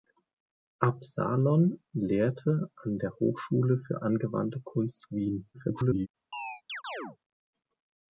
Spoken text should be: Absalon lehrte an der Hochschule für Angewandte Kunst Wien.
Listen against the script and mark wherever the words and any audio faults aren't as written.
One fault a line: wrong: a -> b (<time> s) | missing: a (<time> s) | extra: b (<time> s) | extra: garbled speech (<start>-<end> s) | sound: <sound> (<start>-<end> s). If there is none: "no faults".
extra: garbled speech (5.5-6.1 s)
sound: chirp (6.3-7.2 s)